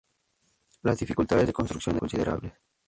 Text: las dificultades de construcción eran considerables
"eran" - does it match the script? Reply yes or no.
no